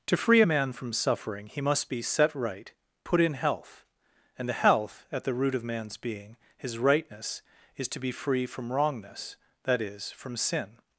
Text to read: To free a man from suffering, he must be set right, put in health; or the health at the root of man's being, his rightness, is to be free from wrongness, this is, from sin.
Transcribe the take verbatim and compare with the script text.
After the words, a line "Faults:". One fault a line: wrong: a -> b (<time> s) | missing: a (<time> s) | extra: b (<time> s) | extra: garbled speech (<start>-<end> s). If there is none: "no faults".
To free a man from suffering, he must be set right, put in health; and the health at the root of man's being, his rightness, is to be free from wrongness, that is, from sin.
Faults:
wrong: or -> and (4.4 s)
wrong: this -> that (9.6 s)